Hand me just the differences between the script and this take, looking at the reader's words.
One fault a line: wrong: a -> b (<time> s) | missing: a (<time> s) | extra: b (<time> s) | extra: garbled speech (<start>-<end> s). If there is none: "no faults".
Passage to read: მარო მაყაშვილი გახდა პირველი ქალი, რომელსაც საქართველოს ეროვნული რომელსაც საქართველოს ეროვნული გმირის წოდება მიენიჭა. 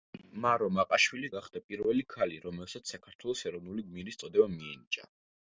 missing: რომელსაც საქართველოს ეროვნული (3.9 s)